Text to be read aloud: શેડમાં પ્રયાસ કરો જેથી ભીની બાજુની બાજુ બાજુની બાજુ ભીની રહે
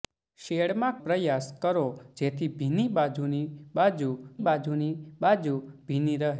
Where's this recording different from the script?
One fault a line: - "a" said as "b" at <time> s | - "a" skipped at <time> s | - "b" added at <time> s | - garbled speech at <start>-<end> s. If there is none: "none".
none